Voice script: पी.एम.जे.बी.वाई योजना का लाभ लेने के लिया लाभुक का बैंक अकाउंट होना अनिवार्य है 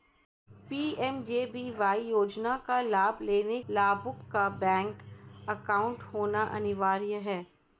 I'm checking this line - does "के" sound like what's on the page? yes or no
no